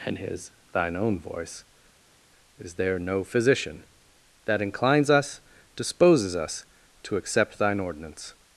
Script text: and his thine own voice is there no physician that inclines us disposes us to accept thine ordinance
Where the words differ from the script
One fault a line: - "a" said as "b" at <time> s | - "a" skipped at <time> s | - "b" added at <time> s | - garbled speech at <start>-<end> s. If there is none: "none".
none